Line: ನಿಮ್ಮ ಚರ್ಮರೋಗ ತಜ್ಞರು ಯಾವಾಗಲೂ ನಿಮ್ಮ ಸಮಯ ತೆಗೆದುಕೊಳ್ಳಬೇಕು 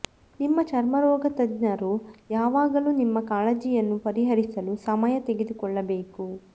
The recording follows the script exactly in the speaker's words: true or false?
false